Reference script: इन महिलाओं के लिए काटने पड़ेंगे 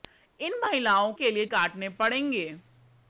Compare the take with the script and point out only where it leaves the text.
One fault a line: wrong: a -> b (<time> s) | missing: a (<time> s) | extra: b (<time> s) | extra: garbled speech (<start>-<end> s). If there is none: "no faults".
no faults